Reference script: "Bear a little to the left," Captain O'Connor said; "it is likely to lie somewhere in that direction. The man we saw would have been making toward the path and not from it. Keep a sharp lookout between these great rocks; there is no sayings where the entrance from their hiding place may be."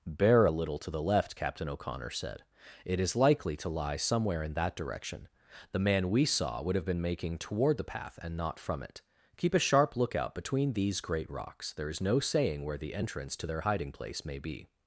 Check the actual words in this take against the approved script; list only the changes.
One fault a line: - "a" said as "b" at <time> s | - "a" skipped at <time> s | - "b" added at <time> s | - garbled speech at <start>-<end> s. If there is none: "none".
- "sayings" said as "saying" at 12.2 s
- "from" said as "to" at 13.3 s